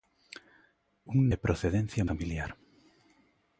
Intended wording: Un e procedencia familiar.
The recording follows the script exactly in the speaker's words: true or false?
true